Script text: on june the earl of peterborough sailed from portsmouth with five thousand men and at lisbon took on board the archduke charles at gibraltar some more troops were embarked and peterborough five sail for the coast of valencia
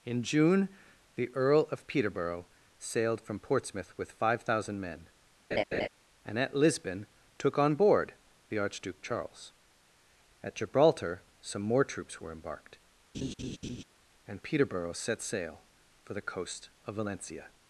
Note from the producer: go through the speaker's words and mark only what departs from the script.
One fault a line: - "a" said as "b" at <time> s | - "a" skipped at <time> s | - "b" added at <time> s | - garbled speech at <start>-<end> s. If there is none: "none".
- "on" said as "in" at 0.1 s
- "five" said as "set" at 14.9 s